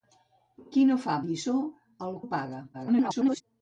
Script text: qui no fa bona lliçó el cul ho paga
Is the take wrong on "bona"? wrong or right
wrong